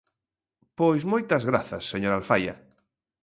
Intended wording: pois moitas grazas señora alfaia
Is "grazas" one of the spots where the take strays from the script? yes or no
no